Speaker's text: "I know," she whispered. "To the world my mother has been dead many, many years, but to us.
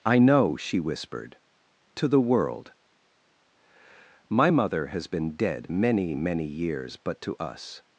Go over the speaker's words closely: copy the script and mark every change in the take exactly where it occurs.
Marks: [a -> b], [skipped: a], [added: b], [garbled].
"I know," she whispered. "To the world my mother has been dead many, many years, but to us.